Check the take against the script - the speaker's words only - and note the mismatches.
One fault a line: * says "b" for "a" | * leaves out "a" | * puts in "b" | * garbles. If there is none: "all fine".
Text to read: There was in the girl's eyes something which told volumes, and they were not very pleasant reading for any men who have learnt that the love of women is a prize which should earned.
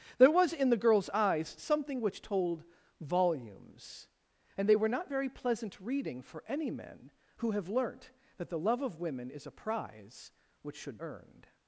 all fine